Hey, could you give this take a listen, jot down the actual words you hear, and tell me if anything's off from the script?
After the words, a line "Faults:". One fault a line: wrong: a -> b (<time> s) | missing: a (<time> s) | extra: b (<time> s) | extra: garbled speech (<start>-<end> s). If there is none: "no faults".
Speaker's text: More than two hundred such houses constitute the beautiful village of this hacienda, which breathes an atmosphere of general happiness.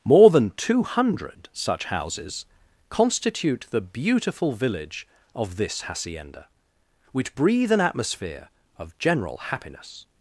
More than two hundred such houses constitute the beautiful village of this hacienda, which breathe an atmosphere of general happiness.
Faults:
wrong: breathes -> breathe (7.3 s)